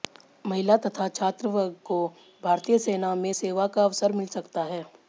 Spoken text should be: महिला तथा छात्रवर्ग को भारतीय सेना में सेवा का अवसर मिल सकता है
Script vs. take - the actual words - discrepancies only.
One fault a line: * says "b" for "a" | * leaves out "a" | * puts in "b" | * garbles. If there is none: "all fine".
all fine